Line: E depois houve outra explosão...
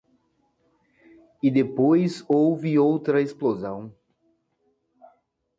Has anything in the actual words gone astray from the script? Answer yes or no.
no